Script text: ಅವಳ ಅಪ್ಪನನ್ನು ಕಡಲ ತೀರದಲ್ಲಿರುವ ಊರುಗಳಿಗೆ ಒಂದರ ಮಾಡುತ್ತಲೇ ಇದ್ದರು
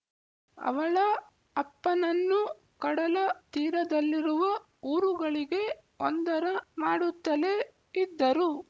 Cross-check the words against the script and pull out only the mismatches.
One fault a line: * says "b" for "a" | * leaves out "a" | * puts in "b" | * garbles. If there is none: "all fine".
all fine